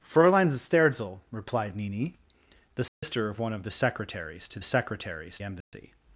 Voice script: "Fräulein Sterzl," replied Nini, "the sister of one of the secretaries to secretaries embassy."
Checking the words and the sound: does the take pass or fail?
fail